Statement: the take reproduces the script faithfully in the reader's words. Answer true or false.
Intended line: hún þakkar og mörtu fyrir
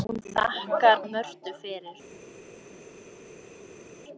true